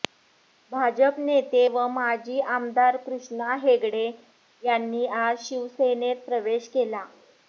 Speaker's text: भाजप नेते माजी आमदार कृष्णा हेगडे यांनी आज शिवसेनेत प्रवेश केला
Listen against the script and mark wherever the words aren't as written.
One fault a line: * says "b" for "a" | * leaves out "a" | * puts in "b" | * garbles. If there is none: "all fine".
* puts in "व"